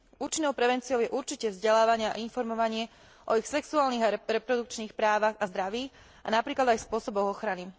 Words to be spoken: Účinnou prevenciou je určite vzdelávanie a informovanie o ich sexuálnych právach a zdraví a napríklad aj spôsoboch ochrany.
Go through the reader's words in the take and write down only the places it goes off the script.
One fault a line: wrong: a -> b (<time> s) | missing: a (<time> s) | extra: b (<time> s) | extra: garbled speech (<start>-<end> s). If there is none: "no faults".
extra: a reprodukčných (4.0 s)